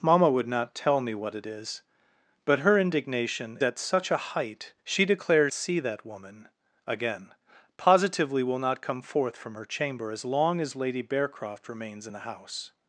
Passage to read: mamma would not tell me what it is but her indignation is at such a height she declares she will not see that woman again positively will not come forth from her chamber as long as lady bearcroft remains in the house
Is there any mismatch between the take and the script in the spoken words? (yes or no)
yes